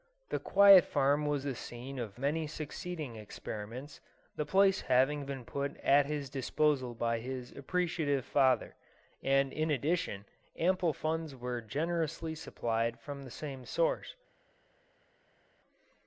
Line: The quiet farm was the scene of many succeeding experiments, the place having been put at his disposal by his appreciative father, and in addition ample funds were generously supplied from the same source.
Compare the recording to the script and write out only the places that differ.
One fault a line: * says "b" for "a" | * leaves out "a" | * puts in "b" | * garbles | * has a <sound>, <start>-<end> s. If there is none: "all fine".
all fine